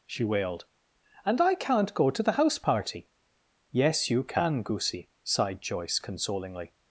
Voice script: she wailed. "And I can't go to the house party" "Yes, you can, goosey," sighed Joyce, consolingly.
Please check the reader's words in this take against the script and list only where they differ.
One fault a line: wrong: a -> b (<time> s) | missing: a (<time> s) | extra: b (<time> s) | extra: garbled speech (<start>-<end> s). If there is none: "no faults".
no faults